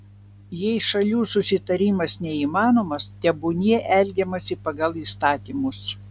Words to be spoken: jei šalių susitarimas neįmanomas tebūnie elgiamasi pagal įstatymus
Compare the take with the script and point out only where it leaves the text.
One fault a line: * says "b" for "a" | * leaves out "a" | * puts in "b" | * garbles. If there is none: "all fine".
all fine